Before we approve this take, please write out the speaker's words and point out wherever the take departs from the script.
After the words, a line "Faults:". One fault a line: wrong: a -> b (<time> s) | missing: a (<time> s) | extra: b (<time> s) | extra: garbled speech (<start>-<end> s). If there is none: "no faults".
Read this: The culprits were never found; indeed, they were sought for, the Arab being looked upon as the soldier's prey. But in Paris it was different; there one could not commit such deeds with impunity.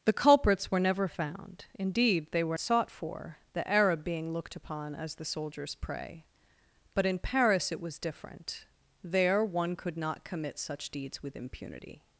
The culprits were never found; indeed, they were sought for, the Arab being looked upon as the soldier's prey. But in Paris it was different; there one could not commit such deeds with impunity.
Faults:
no faults